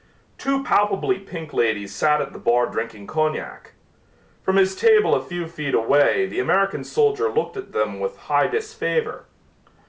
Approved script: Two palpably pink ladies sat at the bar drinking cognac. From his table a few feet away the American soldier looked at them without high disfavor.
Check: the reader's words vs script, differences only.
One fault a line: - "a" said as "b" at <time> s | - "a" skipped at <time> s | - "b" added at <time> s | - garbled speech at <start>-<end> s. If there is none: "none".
- "without" said as "with" at 8.0 s